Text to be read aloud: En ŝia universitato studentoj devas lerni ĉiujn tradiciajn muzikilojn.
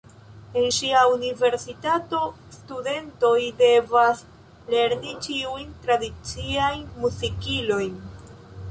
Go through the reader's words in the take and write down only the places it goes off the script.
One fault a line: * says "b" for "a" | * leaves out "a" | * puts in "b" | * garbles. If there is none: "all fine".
all fine